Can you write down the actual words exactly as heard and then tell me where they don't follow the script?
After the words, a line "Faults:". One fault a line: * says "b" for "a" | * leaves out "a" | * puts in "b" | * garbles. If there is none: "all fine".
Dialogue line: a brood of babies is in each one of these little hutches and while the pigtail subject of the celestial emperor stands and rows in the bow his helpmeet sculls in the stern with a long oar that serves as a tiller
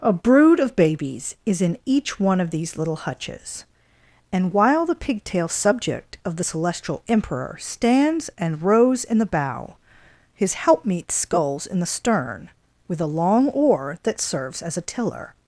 a brood of babies is in each one of these little hutches and while the pigtail subject of the celestial emperor stands and rows in the bow his helpmeet sculls in the stern with a long oar that serves as a tiller
Faults:
all fine